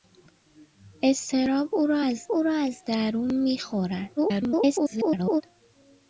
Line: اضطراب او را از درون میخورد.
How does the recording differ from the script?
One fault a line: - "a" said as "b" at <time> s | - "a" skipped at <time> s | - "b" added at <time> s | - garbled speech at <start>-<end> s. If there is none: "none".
- "او را از" added at 2.3 s
- garbled speech at 4.2-5.4 s